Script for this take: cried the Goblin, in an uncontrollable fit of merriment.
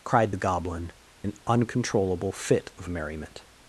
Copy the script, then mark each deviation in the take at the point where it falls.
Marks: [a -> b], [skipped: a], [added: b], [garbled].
cried the Goblin, [skipped: in] an uncontrollable fit of merriment.